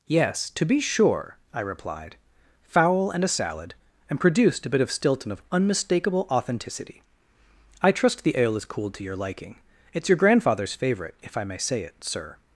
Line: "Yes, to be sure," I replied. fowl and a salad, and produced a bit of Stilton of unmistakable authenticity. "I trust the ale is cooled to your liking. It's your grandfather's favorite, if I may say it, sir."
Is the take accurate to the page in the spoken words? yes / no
yes